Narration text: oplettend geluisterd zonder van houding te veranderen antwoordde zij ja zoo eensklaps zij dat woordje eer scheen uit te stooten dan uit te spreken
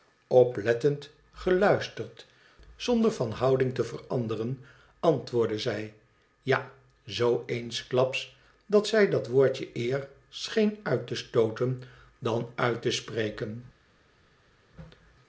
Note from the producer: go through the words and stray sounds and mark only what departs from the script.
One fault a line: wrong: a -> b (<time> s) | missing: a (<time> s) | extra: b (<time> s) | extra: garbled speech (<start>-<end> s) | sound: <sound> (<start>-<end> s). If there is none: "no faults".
extra: dat (8.7 s)